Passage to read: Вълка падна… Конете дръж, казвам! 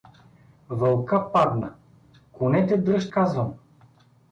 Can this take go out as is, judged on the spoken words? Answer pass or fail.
pass